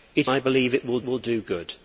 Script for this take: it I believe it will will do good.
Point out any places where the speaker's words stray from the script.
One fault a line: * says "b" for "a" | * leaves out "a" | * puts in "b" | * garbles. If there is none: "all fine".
all fine